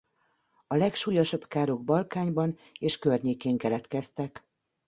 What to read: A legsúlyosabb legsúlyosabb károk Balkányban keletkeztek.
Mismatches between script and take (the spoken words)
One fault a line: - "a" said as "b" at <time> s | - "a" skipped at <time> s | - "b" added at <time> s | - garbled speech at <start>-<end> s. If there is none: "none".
- "legsúlyosabb" skipped at 1.5 s
- "és környékén" added at 2.8 s